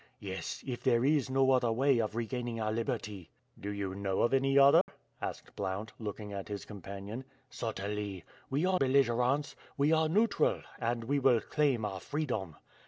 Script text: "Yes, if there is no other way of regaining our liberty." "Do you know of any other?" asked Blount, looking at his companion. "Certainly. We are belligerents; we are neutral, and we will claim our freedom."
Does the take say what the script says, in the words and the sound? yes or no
no